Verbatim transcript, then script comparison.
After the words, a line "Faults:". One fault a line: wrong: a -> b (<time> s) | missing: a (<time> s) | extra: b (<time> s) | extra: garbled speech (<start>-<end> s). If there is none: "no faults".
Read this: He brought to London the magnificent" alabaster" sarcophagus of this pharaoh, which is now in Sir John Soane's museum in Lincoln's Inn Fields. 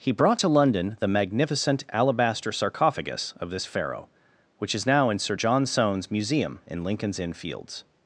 He brought to London the magnificent" alabaster" sarcophagus of this pharaoh, which is now in Sir John Soane's museum in Lincoln's Inn Fields.
Faults:
no faults